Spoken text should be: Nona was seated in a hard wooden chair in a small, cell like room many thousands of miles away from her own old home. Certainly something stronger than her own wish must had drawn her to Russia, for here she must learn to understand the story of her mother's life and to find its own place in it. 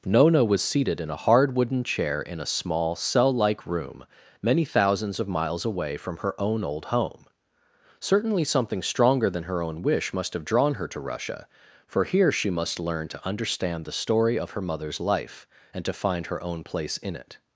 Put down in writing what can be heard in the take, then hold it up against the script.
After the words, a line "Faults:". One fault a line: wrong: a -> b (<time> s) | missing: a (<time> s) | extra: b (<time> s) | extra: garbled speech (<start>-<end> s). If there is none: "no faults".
Nona was seated in a hard wooden chair in a small, cell like room many thousands of miles away from her own old home. Certainly something stronger than her own wish must have drawn her to Russia, for here she must learn to understand the story of her mother's life and to find her own place in it.
Faults:
wrong: had -> have (10.3 s)
wrong: its -> her (16.3 s)